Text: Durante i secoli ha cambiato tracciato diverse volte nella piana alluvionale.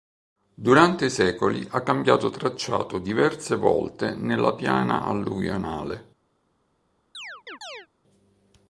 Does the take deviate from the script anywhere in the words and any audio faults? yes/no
yes